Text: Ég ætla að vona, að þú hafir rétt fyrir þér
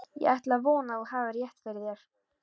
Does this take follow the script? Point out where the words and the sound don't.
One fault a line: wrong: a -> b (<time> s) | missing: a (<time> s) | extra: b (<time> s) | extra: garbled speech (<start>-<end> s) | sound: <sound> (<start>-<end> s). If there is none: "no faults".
no faults